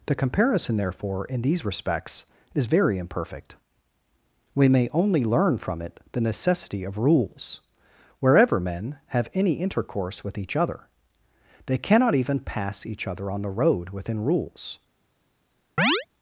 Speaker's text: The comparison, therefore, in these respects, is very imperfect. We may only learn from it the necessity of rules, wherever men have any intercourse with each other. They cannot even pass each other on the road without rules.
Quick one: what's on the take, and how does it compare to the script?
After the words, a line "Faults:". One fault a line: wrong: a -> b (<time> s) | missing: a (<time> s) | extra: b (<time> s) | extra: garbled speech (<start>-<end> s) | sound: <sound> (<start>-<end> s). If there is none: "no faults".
The comparison, therefore, in these respects, is very imperfect. We may only learn from it the necessity of rules, wherever men have any intercourse with each other. They cannot even pass each other on the road within rules.
Faults:
wrong: without -> within (13.9 s)
sound: chirp (15.8-16.1 s)